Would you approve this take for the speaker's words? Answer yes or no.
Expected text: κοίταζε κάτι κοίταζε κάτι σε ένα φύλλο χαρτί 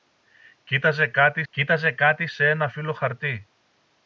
yes